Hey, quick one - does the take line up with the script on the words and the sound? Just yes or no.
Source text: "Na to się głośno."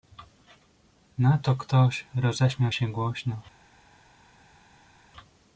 no